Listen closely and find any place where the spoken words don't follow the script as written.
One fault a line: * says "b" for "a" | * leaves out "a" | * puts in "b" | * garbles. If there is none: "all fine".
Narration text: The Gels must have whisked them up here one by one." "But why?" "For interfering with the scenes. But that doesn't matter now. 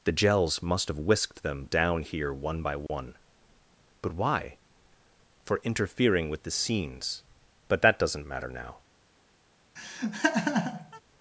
* says "down" for "up"